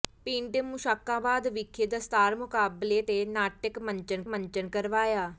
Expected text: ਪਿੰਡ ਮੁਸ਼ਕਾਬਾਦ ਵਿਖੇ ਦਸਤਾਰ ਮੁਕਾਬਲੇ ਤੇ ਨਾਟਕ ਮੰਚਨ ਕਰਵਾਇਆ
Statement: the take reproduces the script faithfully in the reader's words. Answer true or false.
false